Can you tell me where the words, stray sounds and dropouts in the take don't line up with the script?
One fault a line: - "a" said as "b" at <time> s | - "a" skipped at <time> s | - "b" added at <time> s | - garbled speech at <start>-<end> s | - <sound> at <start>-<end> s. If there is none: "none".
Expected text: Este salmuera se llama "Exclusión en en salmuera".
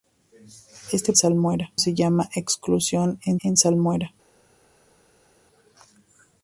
none